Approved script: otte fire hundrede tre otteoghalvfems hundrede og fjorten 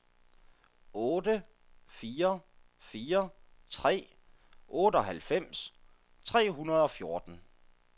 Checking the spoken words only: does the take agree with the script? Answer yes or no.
no